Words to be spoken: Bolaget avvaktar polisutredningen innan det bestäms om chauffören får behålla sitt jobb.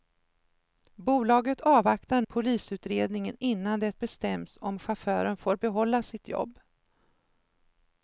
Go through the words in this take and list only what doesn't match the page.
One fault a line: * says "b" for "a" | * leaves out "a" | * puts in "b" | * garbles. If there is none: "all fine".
all fine